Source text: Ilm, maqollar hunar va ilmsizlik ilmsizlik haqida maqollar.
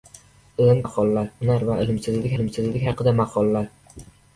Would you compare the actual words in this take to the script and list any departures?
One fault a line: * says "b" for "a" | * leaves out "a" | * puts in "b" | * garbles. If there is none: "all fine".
all fine